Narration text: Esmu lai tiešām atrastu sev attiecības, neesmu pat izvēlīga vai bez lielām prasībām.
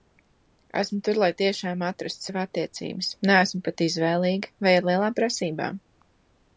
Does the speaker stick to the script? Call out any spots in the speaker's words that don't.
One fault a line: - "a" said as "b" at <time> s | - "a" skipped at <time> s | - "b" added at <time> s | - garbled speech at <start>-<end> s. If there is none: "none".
- "tur" added at 1.1 s
- "bez" said as "ar" at 4.8 s